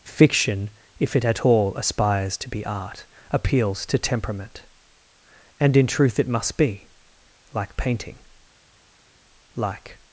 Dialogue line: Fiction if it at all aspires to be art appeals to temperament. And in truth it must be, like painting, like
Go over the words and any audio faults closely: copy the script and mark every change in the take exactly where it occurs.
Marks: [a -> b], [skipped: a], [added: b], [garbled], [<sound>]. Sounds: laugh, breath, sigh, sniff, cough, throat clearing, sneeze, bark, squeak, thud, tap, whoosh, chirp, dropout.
Fiction if it at all aspires to be art appeals to temperament. And in truth it must be, like painting, like